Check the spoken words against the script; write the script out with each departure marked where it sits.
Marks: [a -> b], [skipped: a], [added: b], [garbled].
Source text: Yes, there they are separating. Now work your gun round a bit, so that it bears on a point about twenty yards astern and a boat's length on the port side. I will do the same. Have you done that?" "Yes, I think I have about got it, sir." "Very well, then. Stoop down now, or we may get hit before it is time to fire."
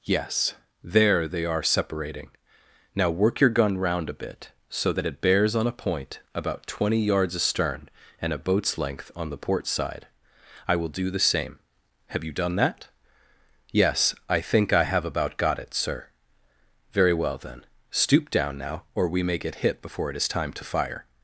Yes, there they are separating. Now work your gun round a bit, so that it bears on a point about twenty yards astern and a boat's length on the port side. I will do the same. Have you done that?" "Yes, I think I have about got it, sir." "Very well, then. Stoop down now, or we may get hit before it is time to fire."